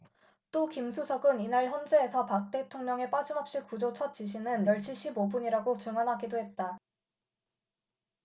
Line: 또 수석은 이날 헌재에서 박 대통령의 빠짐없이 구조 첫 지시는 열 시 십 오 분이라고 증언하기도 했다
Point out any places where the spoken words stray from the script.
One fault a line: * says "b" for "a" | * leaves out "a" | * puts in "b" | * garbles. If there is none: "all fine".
* puts in "김"